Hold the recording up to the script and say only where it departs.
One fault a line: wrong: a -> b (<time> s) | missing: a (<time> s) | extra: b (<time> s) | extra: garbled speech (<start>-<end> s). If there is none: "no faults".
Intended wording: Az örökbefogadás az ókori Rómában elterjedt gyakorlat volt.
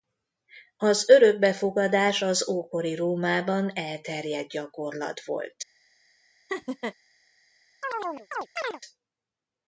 no faults